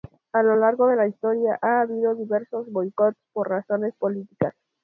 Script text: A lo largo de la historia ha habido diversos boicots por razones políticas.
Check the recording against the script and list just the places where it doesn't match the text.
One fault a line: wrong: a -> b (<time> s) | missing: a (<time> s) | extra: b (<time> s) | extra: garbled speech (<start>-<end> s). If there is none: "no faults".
no faults